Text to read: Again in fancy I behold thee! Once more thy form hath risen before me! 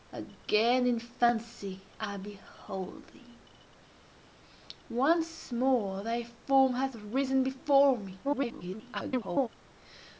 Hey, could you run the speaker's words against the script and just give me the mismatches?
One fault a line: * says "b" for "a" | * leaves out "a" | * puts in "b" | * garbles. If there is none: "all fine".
* garbles